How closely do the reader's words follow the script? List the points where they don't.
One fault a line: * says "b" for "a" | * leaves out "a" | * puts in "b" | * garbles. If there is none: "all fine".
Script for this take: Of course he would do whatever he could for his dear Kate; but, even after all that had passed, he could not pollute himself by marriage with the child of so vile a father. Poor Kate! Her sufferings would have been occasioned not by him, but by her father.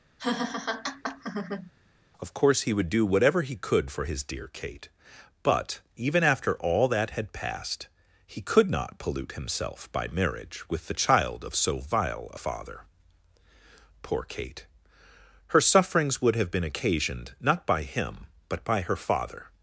all fine